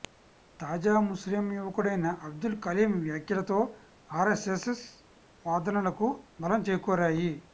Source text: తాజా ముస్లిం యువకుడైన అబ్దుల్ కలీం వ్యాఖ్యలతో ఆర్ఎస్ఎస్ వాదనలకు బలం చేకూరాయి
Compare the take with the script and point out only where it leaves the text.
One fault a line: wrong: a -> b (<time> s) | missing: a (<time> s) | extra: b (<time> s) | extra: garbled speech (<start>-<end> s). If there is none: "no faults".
no faults